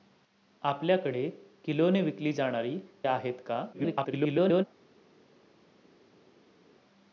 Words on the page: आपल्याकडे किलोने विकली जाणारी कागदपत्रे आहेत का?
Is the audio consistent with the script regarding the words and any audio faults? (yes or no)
no